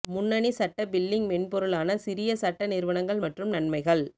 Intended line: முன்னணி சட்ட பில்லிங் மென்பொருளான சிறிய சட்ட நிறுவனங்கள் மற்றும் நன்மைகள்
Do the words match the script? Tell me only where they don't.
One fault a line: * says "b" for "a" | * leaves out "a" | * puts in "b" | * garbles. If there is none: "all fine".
all fine